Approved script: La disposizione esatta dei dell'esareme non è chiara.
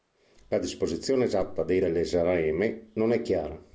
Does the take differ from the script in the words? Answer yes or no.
no